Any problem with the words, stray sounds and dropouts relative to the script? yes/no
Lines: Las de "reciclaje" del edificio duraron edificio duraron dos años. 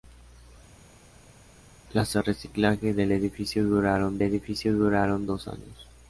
no